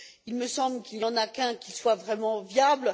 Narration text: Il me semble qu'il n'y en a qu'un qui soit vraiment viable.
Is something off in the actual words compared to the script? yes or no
no